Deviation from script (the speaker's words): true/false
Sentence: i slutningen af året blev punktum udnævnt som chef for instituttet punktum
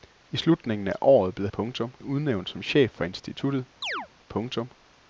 false